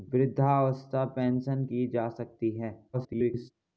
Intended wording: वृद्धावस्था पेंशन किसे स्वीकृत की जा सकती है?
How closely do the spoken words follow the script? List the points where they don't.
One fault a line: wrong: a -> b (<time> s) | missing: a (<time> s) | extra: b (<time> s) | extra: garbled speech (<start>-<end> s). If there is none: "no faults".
missing: किसे स्वीकृत (1.6 s)
extra: garbled speech (2.9-3.5 s)